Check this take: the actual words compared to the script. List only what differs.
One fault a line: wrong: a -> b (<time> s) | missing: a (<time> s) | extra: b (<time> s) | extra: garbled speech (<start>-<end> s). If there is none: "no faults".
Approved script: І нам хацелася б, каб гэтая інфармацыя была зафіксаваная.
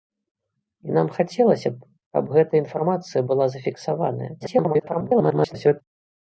extra: garbled speech (4.4-5.8 s)